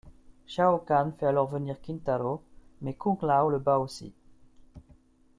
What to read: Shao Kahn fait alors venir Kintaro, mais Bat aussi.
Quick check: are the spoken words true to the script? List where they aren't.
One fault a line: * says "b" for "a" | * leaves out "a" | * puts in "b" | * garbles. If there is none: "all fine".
* puts in "Kung Lao le"